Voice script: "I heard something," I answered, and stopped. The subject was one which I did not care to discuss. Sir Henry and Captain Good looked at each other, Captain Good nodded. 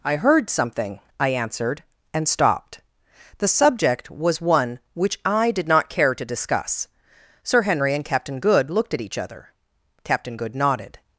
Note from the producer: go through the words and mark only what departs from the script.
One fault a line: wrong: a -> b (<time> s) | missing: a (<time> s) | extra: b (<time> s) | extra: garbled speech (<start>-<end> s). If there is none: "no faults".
no faults